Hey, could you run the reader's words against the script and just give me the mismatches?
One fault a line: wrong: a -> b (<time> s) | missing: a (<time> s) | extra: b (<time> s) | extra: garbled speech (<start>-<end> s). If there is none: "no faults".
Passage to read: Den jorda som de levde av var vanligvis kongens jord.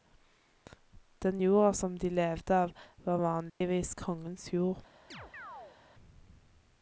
no faults